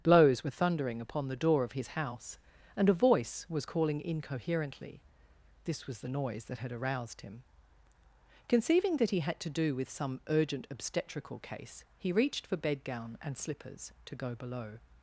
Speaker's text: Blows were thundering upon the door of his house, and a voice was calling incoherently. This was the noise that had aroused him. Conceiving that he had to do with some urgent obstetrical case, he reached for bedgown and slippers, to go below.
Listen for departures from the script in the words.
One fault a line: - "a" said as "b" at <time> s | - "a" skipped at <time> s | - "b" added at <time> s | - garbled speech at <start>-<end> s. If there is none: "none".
none